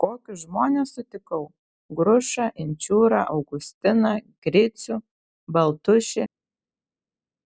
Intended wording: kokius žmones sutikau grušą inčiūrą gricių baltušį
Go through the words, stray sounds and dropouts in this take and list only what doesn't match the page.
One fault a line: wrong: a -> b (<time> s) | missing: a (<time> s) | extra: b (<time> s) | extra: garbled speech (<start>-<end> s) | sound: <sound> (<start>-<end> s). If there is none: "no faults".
extra: augustiną (3.3 s)